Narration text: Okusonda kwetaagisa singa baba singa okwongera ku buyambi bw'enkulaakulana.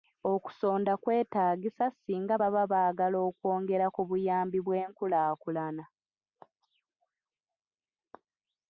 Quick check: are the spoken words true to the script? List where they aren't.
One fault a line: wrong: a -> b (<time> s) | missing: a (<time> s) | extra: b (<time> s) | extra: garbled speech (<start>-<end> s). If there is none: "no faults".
wrong: singa -> baagala (2.7 s)